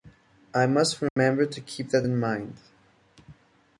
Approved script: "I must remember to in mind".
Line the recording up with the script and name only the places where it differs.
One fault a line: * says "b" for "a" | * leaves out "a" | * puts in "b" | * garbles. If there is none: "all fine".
* puts in "keep that"